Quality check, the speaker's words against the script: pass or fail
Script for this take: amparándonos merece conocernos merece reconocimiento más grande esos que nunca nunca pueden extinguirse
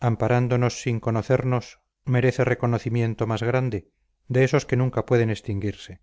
fail